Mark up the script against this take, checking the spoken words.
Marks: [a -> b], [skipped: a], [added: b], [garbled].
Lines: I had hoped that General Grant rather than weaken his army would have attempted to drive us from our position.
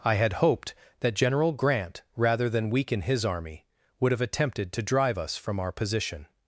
I had hoped that General Grant rather than weaken his army would have attempted to drive us from our position.